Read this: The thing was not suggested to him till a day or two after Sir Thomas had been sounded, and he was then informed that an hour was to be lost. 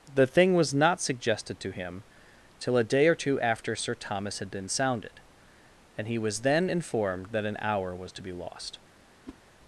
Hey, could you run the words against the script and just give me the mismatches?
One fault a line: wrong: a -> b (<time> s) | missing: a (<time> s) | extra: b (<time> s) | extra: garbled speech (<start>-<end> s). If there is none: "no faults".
no faults